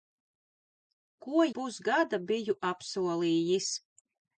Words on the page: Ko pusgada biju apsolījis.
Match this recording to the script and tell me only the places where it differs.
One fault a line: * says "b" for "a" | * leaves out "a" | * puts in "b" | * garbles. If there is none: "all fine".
all fine